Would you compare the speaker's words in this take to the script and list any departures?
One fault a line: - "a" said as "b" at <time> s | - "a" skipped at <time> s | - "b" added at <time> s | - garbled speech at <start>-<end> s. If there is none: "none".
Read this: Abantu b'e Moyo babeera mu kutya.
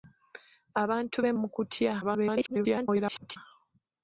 - "Moyo babeera" skipped at 1.3 s
- garbled speech at 2.0-3.4 s